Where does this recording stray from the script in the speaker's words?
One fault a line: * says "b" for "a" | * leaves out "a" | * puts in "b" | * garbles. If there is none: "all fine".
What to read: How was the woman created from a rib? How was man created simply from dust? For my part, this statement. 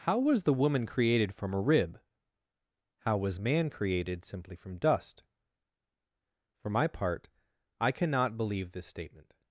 * puts in "I cannot believe"